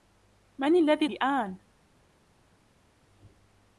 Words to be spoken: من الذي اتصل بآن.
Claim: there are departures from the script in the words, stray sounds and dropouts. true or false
true